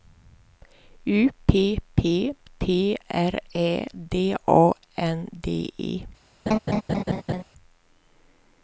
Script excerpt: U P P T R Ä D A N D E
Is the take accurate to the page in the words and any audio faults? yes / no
no